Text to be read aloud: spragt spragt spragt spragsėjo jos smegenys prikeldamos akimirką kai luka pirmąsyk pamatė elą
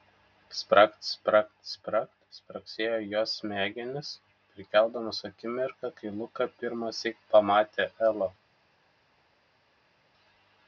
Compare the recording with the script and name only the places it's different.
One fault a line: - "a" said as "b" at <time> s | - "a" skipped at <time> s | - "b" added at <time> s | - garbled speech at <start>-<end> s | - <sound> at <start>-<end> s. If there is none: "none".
none